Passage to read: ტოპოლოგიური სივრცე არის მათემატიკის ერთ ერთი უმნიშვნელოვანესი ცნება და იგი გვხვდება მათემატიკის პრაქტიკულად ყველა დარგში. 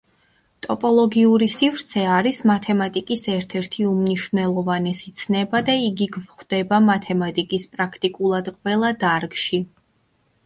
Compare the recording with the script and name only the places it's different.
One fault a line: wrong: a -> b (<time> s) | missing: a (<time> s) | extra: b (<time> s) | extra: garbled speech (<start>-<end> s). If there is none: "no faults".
no faults